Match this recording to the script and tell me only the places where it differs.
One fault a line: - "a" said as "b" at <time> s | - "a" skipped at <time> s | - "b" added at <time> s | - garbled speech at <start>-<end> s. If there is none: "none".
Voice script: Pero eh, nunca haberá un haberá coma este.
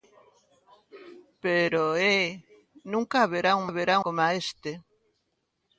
none